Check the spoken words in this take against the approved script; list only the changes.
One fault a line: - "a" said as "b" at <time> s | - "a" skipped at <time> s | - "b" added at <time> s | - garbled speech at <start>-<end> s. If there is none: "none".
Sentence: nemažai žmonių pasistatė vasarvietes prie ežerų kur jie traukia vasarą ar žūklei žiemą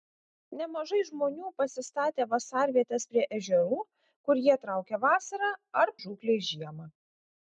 none